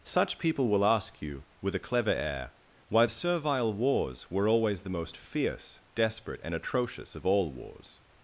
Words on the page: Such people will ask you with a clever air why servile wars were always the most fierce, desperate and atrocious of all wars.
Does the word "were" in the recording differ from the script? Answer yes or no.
no